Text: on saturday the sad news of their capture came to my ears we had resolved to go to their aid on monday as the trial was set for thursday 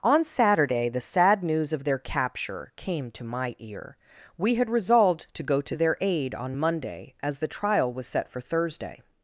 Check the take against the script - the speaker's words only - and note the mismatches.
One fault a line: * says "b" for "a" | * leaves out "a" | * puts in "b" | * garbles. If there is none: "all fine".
* says "ear" for "ears"